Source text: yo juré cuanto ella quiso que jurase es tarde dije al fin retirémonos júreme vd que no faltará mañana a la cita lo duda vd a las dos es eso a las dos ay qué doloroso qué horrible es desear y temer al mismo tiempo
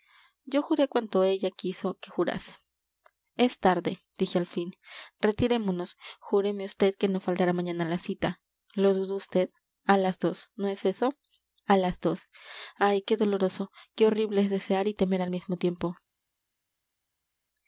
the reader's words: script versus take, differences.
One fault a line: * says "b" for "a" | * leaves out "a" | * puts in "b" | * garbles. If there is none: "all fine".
* puts in "no"